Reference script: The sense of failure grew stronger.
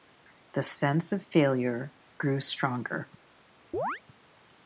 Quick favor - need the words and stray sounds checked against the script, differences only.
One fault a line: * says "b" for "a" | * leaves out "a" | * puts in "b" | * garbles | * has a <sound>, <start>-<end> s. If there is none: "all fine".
* has a chirp, 3.7-4.0 s